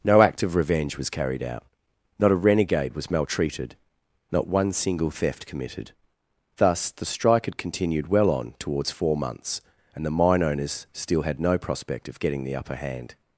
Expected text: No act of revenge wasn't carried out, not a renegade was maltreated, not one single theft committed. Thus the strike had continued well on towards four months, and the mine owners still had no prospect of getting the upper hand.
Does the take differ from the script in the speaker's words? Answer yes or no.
yes